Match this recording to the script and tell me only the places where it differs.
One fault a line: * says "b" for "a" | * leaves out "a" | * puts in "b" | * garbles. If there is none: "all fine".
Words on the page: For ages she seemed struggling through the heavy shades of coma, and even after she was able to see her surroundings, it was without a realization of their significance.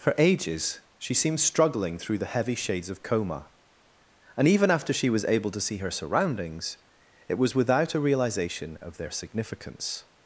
all fine